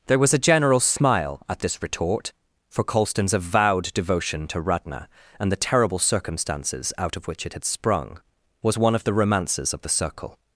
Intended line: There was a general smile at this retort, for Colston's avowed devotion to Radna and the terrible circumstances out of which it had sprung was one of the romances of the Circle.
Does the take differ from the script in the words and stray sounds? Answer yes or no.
no